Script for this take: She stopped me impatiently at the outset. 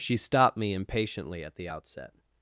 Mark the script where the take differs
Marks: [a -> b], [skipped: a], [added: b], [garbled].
She stopped me impatiently at the outset.